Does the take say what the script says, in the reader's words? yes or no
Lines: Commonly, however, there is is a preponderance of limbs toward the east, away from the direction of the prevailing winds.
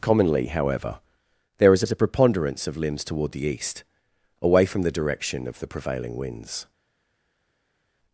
yes